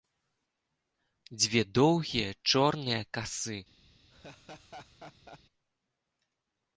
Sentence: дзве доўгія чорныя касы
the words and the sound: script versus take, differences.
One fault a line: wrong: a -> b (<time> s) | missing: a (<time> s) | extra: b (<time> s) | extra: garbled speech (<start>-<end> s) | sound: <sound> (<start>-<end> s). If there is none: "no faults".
sound: laugh (4.1-5.4 s)